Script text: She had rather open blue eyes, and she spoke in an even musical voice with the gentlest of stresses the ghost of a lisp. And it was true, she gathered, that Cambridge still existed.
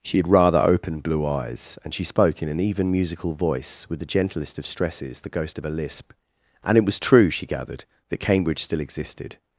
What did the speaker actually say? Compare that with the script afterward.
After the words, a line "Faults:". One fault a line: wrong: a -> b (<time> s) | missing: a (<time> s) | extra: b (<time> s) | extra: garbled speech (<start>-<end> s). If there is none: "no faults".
She had rather open blue eyes, and she spoke in an even musical voice with the gentlest of stresses the ghost of a lisp. And it was true, she gathered, that Cambridge still existed.
Faults:
no faults